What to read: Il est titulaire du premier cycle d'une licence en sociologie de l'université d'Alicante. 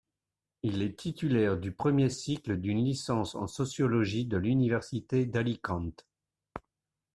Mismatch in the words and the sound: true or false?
false